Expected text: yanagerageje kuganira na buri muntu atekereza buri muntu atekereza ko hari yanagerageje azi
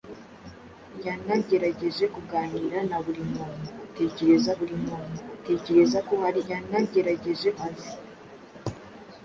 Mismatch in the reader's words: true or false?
false